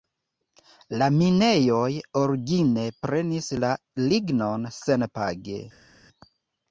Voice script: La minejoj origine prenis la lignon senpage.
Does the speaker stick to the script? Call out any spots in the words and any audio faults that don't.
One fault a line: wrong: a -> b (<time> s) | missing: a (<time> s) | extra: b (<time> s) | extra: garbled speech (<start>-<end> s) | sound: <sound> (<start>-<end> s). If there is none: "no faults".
no faults